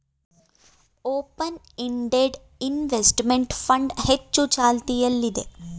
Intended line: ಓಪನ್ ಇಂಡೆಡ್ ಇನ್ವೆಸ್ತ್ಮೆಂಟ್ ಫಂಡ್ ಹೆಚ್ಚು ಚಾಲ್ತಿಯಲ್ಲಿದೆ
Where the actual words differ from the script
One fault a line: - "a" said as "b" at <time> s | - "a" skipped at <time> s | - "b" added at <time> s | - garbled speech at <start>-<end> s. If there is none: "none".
none